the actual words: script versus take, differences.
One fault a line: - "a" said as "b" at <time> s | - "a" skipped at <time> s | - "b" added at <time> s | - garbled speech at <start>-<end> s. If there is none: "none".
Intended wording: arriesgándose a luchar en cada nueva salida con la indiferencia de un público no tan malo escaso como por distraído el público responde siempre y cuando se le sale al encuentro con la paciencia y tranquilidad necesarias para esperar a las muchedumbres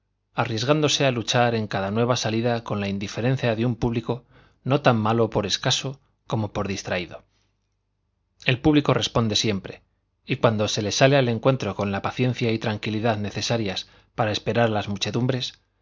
- "por" added at 5.3 s